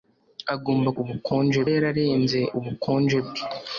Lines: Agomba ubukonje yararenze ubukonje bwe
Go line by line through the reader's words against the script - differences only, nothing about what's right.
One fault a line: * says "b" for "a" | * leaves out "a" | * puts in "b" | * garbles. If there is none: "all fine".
all fine